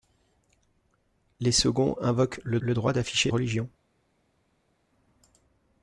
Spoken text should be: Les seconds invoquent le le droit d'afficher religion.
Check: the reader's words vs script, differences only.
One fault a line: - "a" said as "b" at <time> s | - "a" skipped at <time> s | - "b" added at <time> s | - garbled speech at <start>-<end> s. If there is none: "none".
none